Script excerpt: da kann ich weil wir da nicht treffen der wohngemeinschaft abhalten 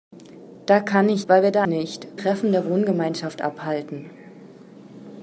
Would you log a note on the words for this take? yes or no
no